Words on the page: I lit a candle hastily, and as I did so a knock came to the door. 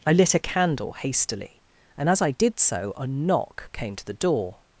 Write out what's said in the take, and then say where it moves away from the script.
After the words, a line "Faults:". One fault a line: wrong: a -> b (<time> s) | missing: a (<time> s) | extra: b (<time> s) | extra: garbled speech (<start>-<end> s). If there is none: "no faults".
I lit a candle hastily, and as I did so a knock came to the door.
Faults:
no faults